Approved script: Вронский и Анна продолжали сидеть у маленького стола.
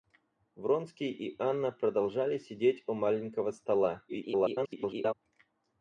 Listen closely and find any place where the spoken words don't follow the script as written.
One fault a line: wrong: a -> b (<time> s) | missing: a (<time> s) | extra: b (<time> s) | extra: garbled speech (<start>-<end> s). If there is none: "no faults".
extra: garbled speech (4.1-5.1 s)